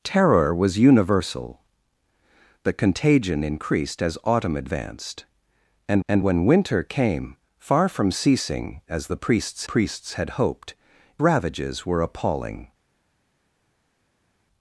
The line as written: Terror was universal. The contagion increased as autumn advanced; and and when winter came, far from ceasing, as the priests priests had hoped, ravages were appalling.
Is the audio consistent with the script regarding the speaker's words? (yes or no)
yes